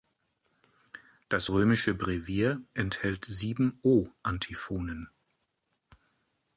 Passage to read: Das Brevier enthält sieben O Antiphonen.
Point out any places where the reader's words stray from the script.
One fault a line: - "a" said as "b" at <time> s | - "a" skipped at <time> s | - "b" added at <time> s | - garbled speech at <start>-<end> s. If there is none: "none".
- "römische" added at 1.5 s